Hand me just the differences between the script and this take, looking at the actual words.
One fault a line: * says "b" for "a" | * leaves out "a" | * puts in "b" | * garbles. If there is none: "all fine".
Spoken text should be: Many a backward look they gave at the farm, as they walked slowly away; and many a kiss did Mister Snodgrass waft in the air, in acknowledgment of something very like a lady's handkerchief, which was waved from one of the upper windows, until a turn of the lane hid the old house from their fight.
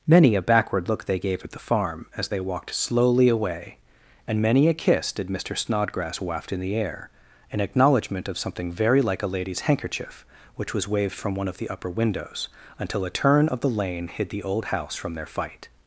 all fine